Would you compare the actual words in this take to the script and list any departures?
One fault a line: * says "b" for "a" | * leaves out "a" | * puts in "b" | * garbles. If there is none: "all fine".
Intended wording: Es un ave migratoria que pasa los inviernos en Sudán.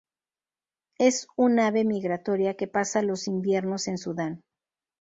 all fine